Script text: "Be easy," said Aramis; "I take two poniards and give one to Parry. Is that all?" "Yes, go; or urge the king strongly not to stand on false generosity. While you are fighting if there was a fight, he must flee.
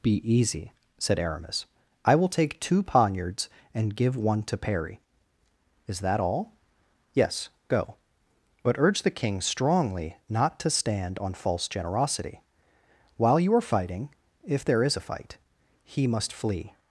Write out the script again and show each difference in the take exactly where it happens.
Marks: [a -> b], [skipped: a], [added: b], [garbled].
"Be easy," said Aramis; "I [added: will] take two poniards and give one to Parry. Is that all?" "Yes, go; [or -> but] urge the king strongly not to stand on false generosity. While you are fighting if there [was -> is] a fight, he must flee.